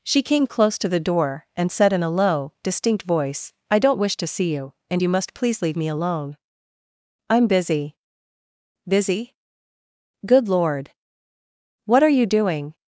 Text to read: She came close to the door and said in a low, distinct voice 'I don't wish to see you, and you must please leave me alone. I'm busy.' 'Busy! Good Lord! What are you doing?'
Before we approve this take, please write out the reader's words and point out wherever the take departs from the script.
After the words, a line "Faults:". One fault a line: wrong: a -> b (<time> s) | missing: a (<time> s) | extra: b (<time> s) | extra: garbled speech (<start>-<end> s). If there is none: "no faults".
She came close to the door and said in a low, distinct voice 'I don't wish to see you, and you must please leave me alone. I'm busy.' 'Busy! Good Lord! What are you doing?'
Faults:
no faults